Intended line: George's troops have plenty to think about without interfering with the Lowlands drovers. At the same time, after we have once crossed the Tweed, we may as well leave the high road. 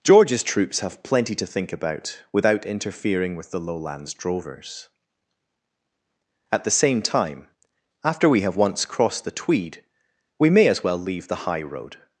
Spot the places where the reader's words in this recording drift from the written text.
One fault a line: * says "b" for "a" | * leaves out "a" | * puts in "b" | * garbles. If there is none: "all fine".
all fine